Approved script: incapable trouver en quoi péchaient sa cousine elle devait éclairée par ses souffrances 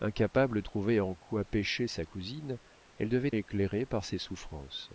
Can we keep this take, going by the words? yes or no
yes